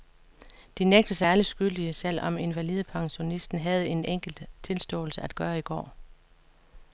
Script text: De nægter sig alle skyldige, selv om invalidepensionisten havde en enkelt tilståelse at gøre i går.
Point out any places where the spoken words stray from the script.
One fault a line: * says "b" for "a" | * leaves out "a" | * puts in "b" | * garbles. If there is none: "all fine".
all fine